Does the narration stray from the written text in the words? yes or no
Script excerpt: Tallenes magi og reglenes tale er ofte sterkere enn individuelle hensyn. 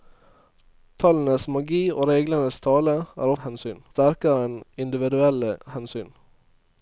yes